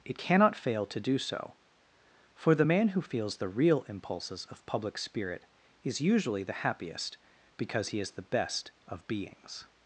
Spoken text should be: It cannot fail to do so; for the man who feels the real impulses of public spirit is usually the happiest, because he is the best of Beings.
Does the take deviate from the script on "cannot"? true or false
false